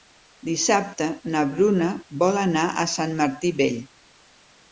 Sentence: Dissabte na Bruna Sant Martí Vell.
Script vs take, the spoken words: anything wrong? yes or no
yes